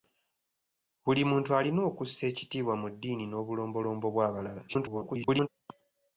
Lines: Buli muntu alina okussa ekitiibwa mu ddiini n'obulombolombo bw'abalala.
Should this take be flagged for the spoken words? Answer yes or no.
yes